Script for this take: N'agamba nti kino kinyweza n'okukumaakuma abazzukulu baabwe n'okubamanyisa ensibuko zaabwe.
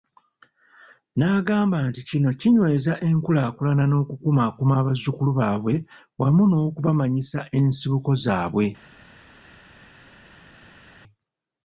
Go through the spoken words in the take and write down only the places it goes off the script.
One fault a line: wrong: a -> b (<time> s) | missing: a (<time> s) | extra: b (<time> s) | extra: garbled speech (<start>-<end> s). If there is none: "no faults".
extra: enkulaakulana (3.1 s)
extra: wamu (6.2 s)